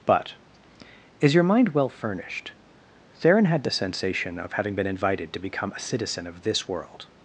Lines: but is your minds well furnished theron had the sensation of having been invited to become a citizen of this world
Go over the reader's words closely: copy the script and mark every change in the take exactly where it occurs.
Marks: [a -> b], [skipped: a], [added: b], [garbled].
but is your [minds -> mind] well furnished theron had the sensation of having been invited to become a citizen of this world